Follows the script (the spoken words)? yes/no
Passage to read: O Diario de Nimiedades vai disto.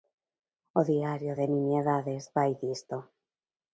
yes